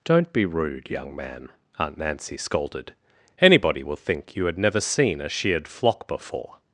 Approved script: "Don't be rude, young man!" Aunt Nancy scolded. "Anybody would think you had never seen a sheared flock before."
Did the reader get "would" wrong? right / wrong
wrong